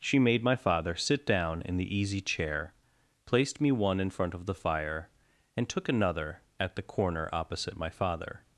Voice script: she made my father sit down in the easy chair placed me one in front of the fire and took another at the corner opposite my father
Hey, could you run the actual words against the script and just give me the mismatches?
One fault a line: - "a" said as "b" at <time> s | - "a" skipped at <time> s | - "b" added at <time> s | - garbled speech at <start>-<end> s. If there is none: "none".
none